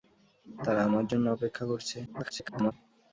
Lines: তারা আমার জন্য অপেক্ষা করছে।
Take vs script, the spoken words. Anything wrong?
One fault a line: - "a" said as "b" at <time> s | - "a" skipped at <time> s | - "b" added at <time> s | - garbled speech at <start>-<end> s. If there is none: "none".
- garbled speech at 2.1-2.7 s